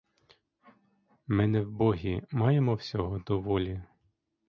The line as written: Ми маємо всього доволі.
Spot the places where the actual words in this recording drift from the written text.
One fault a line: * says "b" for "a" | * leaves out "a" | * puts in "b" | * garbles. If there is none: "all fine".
* puts in "не вбогі"